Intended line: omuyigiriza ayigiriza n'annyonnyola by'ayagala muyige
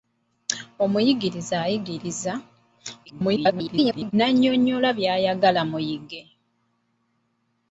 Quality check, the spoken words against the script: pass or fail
fail